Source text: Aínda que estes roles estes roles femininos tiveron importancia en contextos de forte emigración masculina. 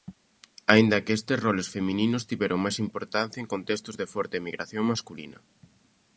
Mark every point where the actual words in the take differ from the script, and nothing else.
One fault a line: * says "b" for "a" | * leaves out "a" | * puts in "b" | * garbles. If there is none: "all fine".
* leaves out "estes roles"
* puts in "máis"